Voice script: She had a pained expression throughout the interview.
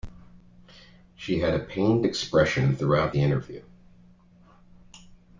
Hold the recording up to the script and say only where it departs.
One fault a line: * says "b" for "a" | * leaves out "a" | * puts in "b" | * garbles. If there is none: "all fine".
all fine